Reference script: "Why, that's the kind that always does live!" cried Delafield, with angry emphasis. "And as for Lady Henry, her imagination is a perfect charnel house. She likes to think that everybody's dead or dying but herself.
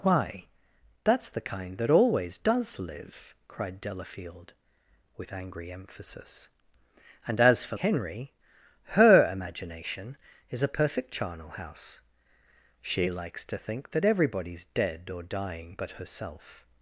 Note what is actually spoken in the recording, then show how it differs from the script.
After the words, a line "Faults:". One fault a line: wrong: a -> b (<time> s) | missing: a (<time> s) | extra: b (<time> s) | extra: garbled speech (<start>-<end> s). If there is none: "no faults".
"Why, that's the kind that always does live!" cried Delafield, with angry emphasis. "And as for Henry, her imagination is a perfect charnel house. She likes to think that everybody's dead or dying but herself.
Faults:
missing: Lady (7.8 s)